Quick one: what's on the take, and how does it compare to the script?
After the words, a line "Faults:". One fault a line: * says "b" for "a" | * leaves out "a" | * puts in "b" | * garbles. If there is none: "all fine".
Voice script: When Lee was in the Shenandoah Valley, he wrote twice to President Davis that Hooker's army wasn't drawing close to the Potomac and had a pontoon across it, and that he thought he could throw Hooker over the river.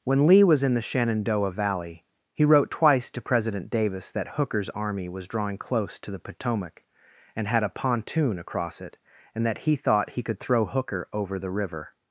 When Lee was in the Shenandoah Valley, he wrote twice to President Davis that Hooker's army was drawing close to the Potomac and had a pontoon across it, and that he thought he could throw Hooker over the river.
Faults:
* says "was" for "wasn't"